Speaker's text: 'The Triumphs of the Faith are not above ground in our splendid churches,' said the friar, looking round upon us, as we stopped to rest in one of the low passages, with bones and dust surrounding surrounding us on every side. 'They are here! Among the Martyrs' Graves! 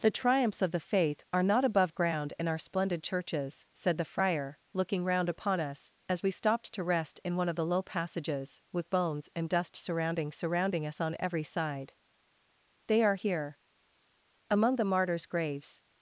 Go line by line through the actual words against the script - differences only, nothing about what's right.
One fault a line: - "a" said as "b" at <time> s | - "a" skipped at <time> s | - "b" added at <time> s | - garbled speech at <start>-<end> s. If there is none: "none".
none